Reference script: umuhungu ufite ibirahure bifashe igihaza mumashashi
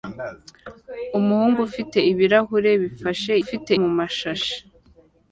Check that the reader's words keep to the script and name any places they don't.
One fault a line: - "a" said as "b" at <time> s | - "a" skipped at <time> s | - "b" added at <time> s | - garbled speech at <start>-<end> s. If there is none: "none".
- "igihaza" said as "ufite" at 3.4 s